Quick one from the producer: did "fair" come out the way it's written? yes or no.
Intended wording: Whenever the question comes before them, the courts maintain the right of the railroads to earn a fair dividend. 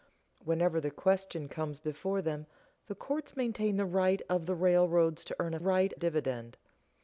no